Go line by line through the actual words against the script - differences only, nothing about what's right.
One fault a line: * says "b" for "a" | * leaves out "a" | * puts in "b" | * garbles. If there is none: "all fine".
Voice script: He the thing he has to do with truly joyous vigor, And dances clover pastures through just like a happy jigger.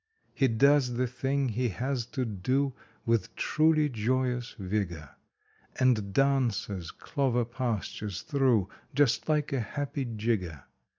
* puts in "does"